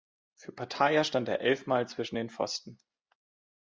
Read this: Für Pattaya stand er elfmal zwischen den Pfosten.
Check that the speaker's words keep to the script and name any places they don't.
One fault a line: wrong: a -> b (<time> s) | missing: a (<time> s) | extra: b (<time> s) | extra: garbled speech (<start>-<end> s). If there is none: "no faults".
no faults